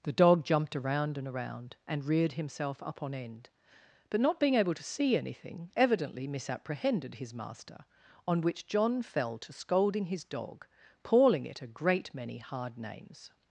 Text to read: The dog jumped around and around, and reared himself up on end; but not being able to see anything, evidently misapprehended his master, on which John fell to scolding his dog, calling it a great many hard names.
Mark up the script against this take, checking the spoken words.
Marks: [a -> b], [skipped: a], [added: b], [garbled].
The dog jumped around and around, and reared himself up on end; but not being able to see anything, evidently misapprehended his master, on which John fell to scolding his dog, calling it a great many hard names.